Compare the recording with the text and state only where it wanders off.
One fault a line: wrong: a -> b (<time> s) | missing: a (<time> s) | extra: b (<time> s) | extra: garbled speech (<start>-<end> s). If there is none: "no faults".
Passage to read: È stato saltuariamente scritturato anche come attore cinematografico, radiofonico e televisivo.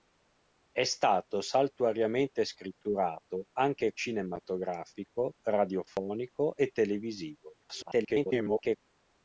missing: come attore (3.9 s)
extra: garbled speech (7.6-8.8 s)